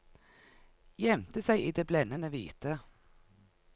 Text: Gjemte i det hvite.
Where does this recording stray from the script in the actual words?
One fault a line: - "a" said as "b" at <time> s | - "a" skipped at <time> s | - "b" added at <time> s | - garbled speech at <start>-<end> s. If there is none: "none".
- "seg" added at 1.4 s
- "blendende" added at 1.9 s